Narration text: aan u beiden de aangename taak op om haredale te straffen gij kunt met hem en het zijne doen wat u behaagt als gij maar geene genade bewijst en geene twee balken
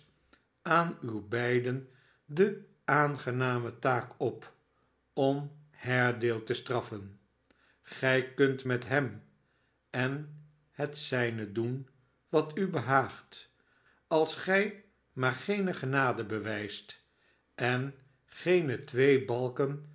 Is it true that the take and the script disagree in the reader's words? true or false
false